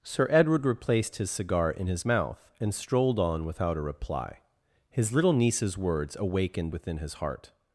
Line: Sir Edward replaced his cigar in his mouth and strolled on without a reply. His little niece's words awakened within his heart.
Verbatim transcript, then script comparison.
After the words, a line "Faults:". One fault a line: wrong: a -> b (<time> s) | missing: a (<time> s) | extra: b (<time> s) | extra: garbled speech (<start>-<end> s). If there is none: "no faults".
Sir Edward replaced his cigar in his mouth and strolled on without a reply. His little niece's words awakened within his heart.
Faults:
no faults